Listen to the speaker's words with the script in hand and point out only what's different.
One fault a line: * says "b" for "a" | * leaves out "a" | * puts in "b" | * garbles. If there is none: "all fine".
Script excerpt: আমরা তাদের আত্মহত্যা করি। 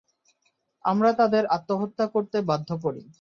* puts in "করতে বাধ্য"